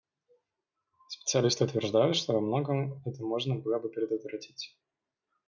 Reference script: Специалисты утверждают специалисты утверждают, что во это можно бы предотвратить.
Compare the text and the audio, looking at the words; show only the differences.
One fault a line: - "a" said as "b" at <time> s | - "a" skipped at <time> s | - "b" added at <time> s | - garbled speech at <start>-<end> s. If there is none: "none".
- "специалисты утверждают" skipped at 2.1 s
- "многом" added at 2.4 s
- "было" added at 3.5 s